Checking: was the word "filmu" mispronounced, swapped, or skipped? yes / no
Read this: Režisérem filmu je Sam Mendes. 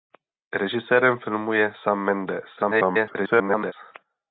no